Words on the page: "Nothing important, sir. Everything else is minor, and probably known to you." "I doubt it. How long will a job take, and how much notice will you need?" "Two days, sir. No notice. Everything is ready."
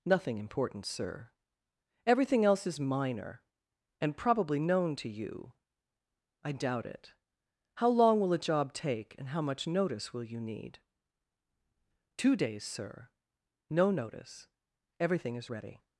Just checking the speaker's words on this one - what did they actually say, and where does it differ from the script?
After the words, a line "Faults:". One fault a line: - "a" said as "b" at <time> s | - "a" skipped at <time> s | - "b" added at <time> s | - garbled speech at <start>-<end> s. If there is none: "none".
"Nothing important, sir. Everything else is minor, and probably known to you." "I doubt it. How long will a job take, and how much notice will you need?" "Two days, sir. No notice. Everything is ready."
Faults:
none